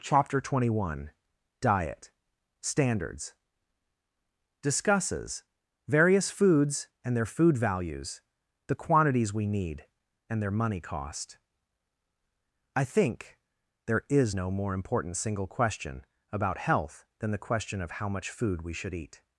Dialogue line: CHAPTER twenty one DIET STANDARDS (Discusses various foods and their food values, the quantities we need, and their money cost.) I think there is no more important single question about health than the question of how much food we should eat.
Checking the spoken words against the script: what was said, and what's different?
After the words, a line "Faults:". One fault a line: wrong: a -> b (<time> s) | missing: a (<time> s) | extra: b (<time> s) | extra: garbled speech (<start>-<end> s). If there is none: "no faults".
CHAPTER twenty one DIET STANDARDS (Discusses various foods and their food values, the quantities we need, and their money cost.) I think there is no more important single question about health than the question of how much food we should eat.
Faults:
no faults